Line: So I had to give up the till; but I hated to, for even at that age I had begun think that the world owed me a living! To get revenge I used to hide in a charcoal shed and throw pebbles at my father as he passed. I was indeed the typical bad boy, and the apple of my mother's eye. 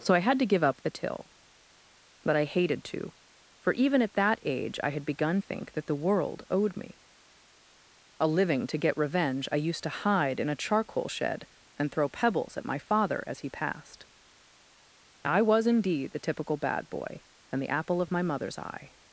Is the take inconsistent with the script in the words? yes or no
no